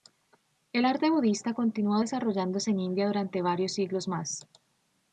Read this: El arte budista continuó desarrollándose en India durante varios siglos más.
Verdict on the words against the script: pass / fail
pass